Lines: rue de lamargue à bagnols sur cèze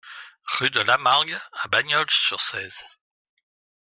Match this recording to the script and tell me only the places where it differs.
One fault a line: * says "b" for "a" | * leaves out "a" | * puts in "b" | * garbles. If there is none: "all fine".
all fine